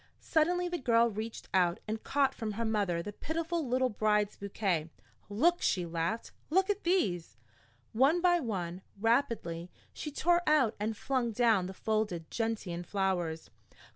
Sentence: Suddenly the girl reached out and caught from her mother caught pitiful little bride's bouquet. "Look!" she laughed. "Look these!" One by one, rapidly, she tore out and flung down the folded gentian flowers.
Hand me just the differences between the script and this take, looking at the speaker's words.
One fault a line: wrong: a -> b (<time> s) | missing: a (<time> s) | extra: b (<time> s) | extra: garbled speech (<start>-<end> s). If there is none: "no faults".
wrong: caught -> the (3.0 s)
extra: at (6.7 s)